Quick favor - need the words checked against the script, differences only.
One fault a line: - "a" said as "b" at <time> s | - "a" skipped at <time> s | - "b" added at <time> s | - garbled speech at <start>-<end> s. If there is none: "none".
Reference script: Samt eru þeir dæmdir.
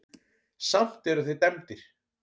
none